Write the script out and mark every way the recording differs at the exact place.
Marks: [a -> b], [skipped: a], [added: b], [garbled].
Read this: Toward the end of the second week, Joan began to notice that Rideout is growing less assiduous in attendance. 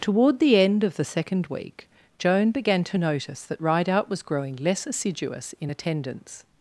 Toward the end of the second week, Joan began to notice that Rideout [is -> was] growing less assiduous in attendance.